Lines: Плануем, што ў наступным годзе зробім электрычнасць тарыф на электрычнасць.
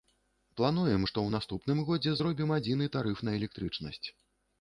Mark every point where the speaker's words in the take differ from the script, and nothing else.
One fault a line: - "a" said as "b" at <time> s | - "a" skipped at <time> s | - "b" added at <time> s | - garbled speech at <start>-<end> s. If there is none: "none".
- "электрычнасць" said as "адзіны" at 2.6 s